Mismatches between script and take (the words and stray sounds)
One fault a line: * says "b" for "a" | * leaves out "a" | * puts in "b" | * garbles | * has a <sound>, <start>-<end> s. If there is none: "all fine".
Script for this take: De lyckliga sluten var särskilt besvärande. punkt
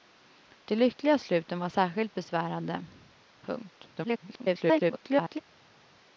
* garbles